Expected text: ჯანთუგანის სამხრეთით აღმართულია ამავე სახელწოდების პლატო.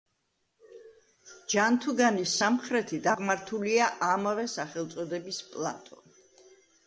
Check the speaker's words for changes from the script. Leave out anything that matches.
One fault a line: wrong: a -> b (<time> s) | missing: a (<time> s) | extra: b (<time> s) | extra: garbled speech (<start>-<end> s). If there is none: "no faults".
no faults